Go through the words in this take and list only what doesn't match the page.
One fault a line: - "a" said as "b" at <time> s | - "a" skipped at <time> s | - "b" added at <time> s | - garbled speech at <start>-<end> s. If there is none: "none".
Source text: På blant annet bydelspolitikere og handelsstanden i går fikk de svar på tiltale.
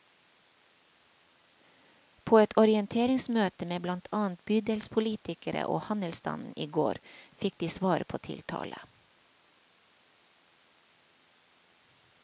- "et orienteringsmøte med" added at 2.4 s